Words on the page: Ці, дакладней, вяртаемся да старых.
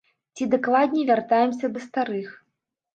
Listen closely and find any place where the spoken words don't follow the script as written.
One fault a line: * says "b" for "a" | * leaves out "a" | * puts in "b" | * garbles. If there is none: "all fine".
all fine